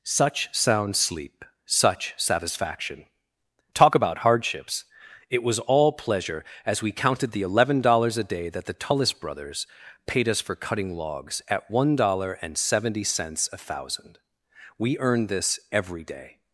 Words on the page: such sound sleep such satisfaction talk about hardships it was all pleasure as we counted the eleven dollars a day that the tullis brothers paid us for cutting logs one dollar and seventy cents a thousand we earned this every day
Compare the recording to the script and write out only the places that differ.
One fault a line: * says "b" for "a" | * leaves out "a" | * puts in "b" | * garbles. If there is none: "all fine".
* puts in "at"